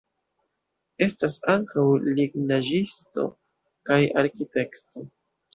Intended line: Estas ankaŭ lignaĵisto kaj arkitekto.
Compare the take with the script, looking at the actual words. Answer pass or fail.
pass